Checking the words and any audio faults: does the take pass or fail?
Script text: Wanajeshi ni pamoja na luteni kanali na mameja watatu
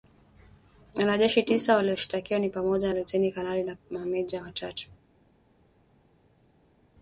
fail